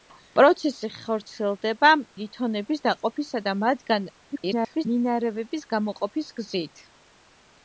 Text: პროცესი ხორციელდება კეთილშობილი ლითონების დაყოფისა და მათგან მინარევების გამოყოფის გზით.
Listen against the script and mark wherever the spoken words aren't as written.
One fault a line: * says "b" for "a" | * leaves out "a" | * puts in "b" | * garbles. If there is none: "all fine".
* leaves out "კეთილშობილი"
* garbles